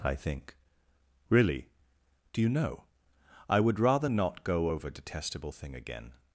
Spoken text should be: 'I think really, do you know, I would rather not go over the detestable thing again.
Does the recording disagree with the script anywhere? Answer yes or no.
yes